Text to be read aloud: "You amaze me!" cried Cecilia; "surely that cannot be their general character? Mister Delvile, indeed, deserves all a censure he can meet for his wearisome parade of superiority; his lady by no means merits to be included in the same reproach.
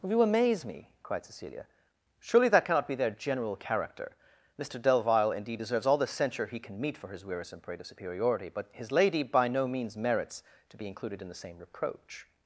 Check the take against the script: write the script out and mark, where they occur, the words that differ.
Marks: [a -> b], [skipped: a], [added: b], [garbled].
"You amaze me!" cried Cecilia; "surely that cannot be their general character? Mister Delvile, indeed, deserves all [a -> the] censure he can meet for his wearisome parade of superiority; [added: but] his lady by no means merits to be included in the same reproach.